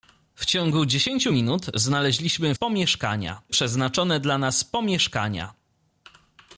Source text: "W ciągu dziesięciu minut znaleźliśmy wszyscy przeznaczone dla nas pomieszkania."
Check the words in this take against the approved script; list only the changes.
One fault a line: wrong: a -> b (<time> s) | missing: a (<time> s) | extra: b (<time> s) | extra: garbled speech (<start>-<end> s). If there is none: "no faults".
wrong: wszyscy -> pomieszkania (2.5 s)